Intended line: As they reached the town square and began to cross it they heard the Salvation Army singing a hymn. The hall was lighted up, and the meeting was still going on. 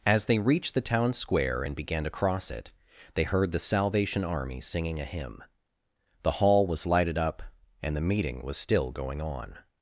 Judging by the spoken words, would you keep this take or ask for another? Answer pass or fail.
pass